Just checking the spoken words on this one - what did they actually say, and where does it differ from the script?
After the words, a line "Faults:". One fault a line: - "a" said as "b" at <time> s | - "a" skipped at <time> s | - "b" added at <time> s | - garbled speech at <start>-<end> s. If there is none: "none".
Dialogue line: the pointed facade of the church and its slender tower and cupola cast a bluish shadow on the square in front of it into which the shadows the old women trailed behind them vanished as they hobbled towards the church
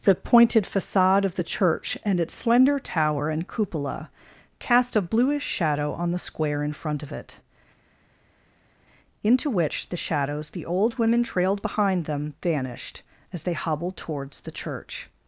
the pointed facade of the church and its slender tower and cupola cast a bluish shadow on the square in front of it into which the shadows the old women trailed behind them vanished as they hobbled towards the church
Faults:
none